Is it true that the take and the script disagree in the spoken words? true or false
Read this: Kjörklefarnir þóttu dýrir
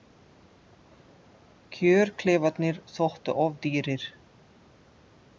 true